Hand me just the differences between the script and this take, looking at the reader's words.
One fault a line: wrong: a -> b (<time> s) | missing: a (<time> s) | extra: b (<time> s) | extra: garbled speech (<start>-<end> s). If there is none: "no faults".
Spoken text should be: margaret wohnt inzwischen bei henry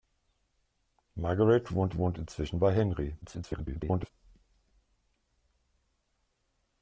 extra: wohnt (2.0 s)
extra: garbled speech (3.2-4.1 s)